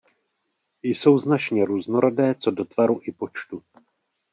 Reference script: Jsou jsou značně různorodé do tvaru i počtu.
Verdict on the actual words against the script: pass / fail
fail